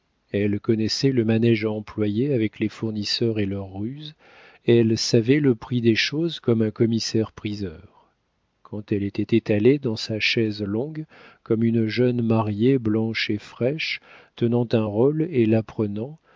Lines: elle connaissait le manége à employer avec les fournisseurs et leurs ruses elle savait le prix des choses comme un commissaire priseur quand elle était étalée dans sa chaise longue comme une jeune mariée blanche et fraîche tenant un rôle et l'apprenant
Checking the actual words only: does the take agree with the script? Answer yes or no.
yes